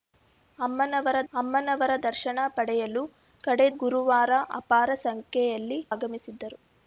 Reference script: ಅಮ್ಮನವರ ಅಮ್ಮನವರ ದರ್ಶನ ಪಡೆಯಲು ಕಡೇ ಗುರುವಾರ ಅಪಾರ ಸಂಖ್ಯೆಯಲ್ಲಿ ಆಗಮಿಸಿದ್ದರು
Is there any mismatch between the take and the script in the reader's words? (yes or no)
no